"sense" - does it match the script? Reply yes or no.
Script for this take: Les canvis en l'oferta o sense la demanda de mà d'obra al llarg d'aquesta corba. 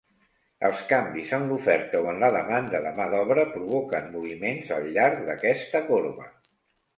no